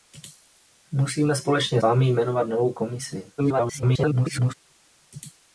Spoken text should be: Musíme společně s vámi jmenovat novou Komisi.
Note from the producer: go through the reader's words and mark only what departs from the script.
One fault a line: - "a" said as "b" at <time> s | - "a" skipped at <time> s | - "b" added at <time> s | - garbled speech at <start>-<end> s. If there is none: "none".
- "s" skipped at 1.8 s
- garbled speech at 3.4-4.5 s